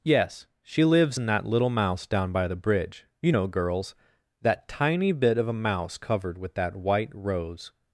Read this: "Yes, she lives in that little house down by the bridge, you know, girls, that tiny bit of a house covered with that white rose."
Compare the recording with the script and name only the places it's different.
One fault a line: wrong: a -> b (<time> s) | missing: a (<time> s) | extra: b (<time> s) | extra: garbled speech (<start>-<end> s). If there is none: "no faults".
wrong: house -> mouse (1.7 s)
wrong: house -> mouse (5.5 s)